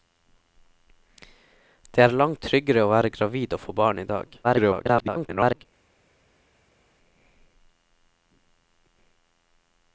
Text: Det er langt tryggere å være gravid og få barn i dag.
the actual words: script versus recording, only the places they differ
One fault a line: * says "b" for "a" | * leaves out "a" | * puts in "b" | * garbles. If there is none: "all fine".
* garbles